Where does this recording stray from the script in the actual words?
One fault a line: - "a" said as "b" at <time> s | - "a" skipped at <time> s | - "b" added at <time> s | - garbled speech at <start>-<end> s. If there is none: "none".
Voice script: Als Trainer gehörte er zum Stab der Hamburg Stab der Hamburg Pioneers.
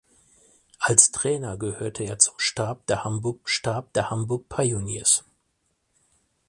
none